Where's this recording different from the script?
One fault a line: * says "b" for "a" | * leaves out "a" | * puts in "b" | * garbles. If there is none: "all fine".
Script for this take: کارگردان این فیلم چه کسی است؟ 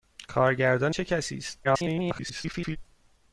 * leaves out "این فیلم"
* garbles